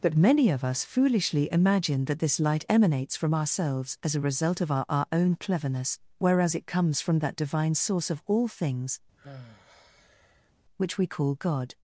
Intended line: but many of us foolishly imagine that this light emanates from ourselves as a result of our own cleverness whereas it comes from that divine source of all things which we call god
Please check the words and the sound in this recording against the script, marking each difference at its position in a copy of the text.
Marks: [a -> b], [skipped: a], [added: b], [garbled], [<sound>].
but many of us foolishly imagine that this light emanates from ourselves as a result of our [added: our] own cleverness whereas it comes from that divine source of all things [sigh] which we call god